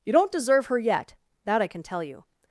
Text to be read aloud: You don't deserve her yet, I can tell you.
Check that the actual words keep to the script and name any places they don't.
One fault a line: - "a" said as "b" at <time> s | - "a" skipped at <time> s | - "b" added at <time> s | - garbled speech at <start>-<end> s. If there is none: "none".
- "that" added at 1.4 s